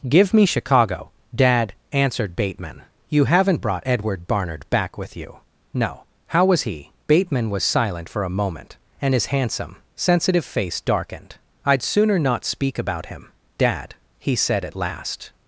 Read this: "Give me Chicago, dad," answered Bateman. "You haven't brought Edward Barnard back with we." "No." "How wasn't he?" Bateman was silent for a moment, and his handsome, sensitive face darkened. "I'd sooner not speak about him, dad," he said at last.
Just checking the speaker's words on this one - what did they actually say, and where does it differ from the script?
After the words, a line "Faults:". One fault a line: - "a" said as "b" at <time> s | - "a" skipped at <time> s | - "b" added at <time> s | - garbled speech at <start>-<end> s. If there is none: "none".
"Give me Chicago, dad," answered Bateman. "You haven't brought Edward Barnard back with you." "No." "How was he?" Bateman was silent for a moment, and his handsome, sensitive face darkened. "I'd sooner not speak about him, dad," he said at last.
Faults:
- "we" said as "you" at 5.2 s
- "wasn't" said as "was" at 6.4 s